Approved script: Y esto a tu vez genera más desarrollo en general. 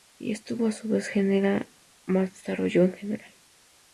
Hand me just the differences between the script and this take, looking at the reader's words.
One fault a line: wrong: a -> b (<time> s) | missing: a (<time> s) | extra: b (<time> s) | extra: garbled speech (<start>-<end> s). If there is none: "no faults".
wrong: tu -> su (0.7 s)